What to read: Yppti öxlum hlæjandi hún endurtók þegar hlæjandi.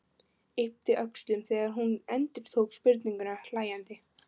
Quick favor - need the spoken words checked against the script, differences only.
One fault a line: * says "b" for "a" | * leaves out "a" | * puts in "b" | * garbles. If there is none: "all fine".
* says "þegar" for "hlæjandi"
* says "spurninguna" for "þegar"